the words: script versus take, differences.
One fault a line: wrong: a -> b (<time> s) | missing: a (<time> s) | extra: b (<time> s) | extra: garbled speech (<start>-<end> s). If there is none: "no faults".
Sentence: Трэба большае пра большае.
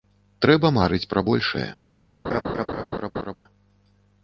wrong: большае -> марыць (0.8 s)